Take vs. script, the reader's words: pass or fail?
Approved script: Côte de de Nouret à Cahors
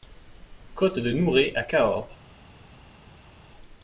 fail